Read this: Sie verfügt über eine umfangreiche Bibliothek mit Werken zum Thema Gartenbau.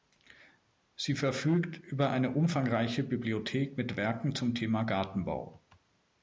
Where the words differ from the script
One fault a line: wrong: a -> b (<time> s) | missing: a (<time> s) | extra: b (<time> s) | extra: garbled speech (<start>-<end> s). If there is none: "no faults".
no faults